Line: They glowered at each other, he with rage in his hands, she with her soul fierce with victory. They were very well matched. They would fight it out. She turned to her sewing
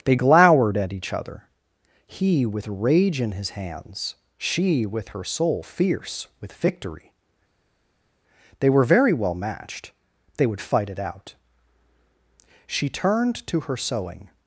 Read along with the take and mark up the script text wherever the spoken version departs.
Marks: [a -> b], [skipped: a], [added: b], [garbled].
They glowered at each other, he with rage in his hands, she with her soul fierce with victory. They were very well matched. They would fight it out. She turned to her sewing